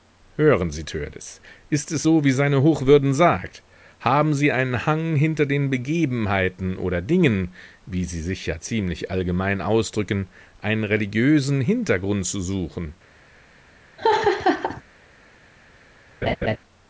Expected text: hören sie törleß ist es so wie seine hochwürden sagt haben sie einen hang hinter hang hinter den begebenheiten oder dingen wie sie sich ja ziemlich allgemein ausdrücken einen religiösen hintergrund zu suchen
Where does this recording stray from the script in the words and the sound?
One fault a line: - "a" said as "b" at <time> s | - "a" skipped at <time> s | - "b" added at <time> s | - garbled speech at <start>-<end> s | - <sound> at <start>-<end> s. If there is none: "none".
- "hang hinter" skipped at 5.4 s
- laugh at 14.0-14.8 s
- laugh at 16.2-16.6 s